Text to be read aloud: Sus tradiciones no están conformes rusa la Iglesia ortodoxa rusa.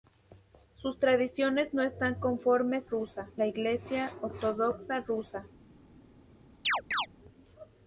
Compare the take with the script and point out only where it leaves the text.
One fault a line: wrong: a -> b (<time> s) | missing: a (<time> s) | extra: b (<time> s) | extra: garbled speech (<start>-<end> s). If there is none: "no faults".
no faults